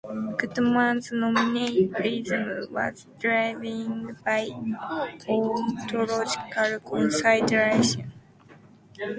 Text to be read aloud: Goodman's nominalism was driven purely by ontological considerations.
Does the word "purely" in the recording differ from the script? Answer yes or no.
yes